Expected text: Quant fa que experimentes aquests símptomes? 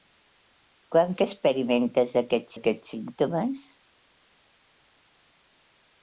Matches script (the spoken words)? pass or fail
fail